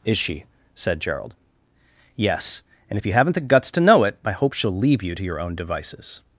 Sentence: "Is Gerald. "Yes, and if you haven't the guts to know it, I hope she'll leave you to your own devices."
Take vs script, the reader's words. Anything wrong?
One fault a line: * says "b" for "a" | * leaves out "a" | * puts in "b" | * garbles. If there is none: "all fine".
* puts in "she said"